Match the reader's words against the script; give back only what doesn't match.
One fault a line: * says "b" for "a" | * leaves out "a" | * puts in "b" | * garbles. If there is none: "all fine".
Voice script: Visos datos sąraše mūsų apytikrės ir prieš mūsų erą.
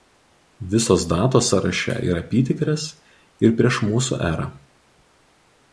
* says "yra" for "mūsų"